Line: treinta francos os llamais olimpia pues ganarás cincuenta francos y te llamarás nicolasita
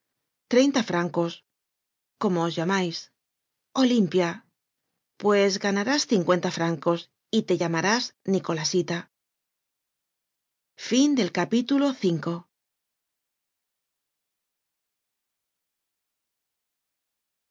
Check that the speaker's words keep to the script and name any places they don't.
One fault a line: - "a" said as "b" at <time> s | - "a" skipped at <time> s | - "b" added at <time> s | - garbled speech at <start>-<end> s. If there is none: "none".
- "cómo" added at 2.2 s